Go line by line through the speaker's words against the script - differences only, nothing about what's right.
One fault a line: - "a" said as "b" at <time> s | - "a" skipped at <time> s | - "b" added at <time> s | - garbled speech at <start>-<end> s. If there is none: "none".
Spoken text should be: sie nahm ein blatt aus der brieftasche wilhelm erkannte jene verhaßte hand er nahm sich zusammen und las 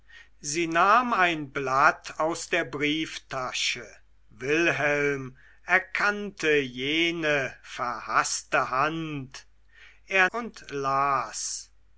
- "nahm sich zusammen" skipped at 10.3 s